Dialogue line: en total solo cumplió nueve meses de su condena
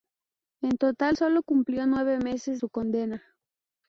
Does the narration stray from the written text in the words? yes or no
yes